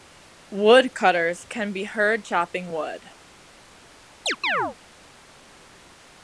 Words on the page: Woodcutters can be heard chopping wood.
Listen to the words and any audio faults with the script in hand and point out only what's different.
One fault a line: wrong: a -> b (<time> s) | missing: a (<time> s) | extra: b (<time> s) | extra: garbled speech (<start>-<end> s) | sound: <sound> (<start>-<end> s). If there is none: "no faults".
sound: chirp (4.3-4.8 s)